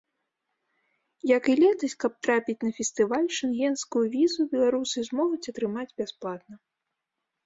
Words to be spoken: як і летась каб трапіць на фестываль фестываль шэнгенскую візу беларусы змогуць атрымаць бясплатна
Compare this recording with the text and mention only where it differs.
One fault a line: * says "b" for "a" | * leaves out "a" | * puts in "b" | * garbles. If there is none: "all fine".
* leaves out "фестываль"